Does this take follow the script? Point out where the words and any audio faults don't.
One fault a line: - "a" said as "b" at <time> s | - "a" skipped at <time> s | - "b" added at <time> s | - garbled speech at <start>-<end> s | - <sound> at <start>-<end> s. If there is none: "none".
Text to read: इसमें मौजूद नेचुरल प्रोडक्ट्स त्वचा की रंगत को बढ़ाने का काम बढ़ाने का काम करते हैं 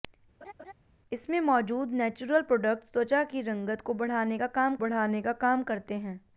- laugh at 0.4-0.7 s